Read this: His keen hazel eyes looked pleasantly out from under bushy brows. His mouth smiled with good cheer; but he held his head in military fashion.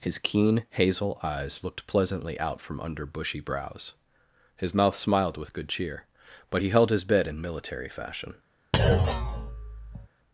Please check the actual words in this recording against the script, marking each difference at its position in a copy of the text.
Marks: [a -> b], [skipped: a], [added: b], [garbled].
His keen hazel eyes looked pleasantly out from under bushy brows. His mouth smiled with good cheer; but he held his [head -> bed] in military fashion.